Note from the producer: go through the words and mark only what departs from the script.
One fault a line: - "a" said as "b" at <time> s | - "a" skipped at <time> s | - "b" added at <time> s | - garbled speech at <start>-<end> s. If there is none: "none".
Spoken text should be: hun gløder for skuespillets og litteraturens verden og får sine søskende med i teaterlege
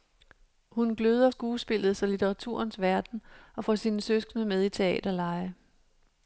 - "for" skipped at 1.3 s